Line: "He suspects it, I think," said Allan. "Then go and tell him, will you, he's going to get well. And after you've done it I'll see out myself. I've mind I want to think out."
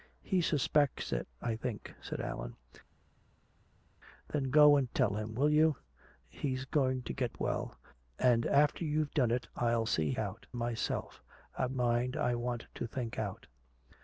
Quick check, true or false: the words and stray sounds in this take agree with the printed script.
true